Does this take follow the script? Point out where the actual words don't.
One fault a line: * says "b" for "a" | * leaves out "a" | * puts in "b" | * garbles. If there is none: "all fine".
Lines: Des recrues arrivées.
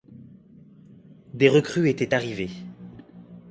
* puts in "étaient"